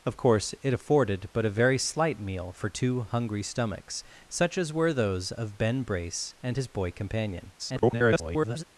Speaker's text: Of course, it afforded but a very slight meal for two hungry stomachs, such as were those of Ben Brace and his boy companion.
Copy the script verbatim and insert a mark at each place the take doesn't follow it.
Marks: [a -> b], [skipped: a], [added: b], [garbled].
Of course, it afforded but a very slight meal for two hungry stomachs, such as were those of Ben Brace and his boy companion. [garbled]